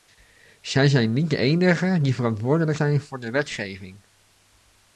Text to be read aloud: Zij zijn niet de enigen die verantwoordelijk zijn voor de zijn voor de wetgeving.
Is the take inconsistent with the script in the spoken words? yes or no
yes